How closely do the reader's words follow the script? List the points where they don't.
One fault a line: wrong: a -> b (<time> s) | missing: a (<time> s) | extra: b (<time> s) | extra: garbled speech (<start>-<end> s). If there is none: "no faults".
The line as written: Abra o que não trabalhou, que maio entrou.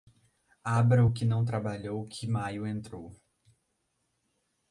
no faults